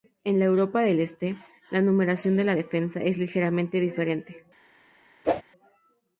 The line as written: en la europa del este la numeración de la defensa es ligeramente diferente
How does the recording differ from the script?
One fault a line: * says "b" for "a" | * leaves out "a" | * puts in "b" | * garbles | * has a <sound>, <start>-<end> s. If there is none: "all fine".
* has a whoosh, 5.2-5.4 s